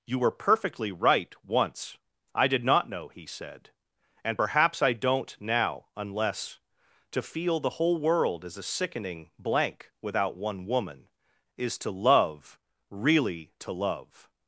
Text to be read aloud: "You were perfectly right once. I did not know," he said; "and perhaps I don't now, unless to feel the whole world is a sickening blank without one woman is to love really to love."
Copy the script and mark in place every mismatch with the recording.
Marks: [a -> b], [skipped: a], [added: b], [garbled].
"You were perfectly right once. I did not know," he said; "and perhaps I don't now, unless to feel the whole world is a sickening blank without one woman is to love really to love."